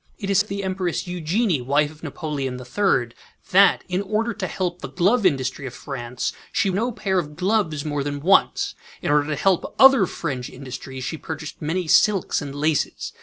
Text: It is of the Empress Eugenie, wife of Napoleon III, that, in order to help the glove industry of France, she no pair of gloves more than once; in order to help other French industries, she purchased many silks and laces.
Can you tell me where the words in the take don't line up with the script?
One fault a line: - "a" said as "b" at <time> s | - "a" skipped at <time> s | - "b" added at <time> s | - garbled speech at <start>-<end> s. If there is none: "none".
none